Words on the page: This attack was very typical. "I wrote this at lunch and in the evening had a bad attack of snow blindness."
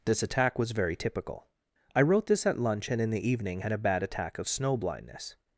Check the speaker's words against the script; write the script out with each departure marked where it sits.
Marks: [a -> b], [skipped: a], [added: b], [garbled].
This attack was very typical. "I wrote this at lunch and in the evening had a bad attack of snow blindness."